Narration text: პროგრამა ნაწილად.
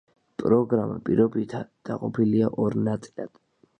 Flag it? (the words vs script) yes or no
yes